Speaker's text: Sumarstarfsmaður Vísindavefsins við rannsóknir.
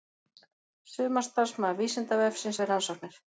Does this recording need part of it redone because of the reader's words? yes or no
no